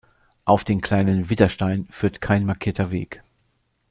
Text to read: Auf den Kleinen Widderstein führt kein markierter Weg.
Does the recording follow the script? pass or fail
pass